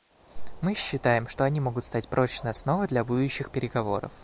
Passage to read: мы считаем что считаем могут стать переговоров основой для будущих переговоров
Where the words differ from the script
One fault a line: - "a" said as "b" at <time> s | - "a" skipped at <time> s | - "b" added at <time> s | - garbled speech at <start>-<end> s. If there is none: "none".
- "считаем" said as "они" at 1.4 s
- "переговоров" said as "прочной" at 2.1 s